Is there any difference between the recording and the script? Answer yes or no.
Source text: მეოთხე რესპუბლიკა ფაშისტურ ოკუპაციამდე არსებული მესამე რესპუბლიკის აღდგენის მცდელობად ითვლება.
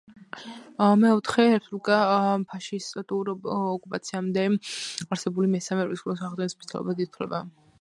no